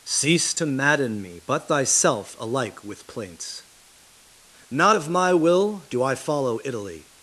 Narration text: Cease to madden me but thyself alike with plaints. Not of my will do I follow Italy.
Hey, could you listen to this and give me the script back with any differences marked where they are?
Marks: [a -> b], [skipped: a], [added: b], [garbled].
Cease to madden me but thyself alike with plaints. Not of my will do I follow Italy.